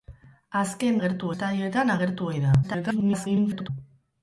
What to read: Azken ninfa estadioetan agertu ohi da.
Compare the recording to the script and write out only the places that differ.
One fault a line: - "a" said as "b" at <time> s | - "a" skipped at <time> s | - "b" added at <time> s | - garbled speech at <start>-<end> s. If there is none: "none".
- "ninfa" said as "agertu" at 1.0 s
- garbled speech at 2.6-3.7 s